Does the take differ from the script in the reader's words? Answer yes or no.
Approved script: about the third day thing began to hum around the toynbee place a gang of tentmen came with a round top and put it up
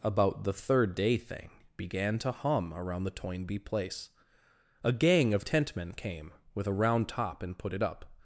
no